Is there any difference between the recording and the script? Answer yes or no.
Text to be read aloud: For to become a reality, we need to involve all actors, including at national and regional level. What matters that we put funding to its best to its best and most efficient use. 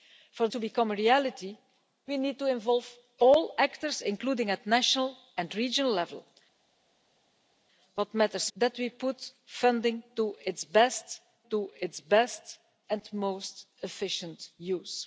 no